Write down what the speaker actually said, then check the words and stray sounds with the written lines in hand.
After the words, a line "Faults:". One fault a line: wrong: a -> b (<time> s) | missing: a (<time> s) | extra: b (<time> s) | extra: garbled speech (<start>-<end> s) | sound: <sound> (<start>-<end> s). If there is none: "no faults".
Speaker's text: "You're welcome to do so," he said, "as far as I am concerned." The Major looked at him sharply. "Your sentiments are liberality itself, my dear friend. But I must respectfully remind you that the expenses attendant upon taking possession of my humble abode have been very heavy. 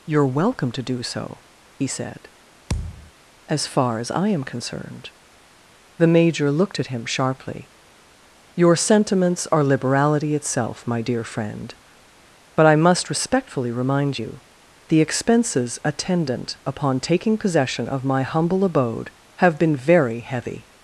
"You're welcome to do so," he said, "as far as I am concerned." The Major looked at him sharply. "Your sentiments are liberality itself, my dear friend. But I must respectfully remind you the expenses attendant upon taking possession of my humble abode have been very heavy.
Faults:
sound: thud (2.7-3.1 s)
missing: that (14.4 s)